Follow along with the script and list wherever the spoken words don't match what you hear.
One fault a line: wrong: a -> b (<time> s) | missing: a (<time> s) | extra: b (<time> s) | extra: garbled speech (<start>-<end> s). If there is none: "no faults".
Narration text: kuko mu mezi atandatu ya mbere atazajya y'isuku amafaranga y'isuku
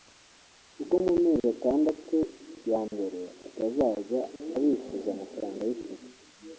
wrong: y'isuku -> abishyuza (4.6 s)